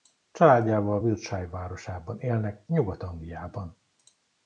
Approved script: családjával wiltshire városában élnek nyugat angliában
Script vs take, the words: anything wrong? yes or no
no